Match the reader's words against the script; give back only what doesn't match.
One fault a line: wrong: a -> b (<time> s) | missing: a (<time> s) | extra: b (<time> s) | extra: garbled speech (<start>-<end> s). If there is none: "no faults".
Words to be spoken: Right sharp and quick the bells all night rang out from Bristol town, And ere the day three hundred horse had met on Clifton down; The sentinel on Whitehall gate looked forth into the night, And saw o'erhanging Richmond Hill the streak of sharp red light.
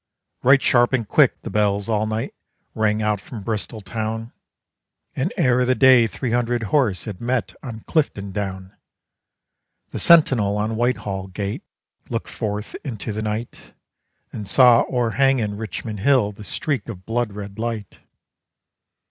wrong: sharp -> blood (17.0 s)